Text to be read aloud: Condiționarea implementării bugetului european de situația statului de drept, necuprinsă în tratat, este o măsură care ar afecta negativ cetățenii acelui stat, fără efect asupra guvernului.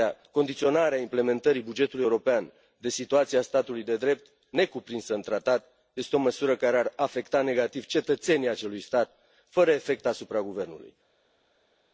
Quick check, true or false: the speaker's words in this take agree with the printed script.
true